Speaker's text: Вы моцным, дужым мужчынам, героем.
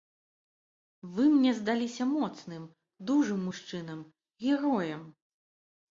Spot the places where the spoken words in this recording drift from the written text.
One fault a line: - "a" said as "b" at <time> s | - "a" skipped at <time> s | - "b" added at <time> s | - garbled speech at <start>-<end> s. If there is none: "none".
- "мне здаліся" added at 1.3 s